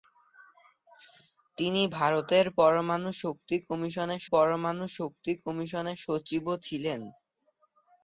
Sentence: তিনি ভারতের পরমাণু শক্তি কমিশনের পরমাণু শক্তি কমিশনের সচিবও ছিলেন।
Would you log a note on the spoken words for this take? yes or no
no